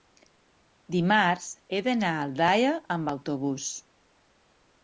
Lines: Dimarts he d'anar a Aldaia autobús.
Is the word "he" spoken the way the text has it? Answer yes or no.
yes